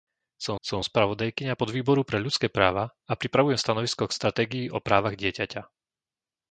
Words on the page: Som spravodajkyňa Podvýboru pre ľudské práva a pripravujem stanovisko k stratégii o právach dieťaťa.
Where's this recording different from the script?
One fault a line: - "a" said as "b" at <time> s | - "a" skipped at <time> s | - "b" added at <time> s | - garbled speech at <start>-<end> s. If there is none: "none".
- "som" added at 0.6 s